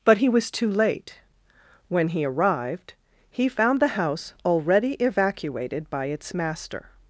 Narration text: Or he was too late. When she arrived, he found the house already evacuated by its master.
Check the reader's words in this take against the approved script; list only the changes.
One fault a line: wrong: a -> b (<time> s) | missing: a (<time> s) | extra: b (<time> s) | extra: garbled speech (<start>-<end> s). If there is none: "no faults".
wrong: Or -> But (0.0 s)
wrong: she -> he (2.1 s)